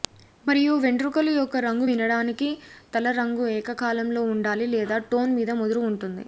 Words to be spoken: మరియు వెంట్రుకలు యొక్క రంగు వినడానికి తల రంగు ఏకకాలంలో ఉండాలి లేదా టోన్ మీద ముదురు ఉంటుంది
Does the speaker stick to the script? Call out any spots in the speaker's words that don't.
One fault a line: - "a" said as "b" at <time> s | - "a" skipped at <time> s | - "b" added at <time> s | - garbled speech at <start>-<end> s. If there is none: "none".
none